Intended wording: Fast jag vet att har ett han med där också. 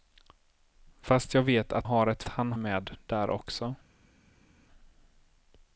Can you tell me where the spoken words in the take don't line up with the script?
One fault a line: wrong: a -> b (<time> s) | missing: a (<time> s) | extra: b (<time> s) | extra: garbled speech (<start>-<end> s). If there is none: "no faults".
no faults